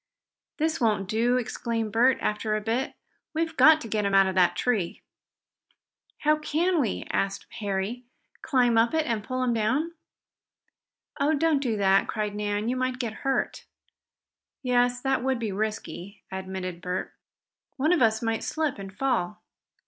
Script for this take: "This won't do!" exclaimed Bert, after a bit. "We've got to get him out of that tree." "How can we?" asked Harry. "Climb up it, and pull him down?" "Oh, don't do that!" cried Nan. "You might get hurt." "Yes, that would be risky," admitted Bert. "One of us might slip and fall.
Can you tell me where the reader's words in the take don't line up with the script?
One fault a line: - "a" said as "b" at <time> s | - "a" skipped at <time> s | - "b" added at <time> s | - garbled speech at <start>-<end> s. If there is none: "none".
none